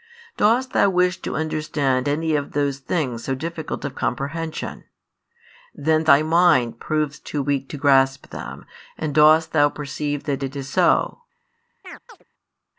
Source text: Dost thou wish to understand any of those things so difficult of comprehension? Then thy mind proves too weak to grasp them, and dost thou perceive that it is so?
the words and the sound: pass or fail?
fail